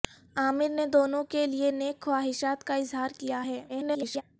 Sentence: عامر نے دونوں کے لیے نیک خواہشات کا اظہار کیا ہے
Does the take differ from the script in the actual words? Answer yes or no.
yes